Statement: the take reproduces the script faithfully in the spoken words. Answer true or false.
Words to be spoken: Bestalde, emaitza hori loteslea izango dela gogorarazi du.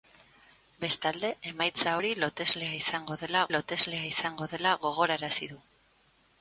false